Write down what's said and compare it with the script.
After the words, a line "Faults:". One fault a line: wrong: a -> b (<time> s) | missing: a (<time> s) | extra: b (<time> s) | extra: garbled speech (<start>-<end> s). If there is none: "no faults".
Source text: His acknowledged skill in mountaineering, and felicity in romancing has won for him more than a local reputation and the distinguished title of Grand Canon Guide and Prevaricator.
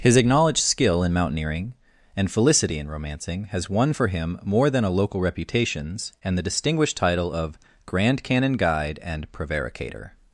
His acknowledged skill in mountaineering, and felicity in romancing has won for him more than a local reputations and the distinguished title of Grand Canon Guide and Prevaricator.
Faults:
wrong: reputation -> reputations (5.2 s)